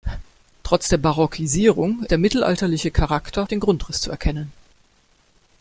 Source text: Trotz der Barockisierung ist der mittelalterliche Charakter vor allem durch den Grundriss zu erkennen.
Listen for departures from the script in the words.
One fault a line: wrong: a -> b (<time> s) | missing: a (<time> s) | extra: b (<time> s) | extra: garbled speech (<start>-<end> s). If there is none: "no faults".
missing: ist (2.0 s)
missing: vor allem durch (3.5 s)